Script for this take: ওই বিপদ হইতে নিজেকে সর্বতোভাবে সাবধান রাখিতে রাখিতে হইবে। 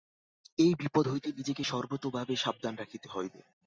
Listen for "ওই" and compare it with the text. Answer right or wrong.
wrong